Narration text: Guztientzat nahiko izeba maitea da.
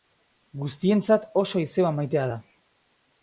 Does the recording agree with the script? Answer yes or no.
no